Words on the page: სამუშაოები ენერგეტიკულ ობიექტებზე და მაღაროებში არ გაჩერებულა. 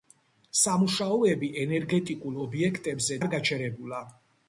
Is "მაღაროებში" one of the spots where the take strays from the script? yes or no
yes